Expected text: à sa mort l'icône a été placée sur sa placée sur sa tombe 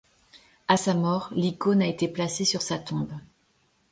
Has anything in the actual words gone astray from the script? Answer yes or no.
yes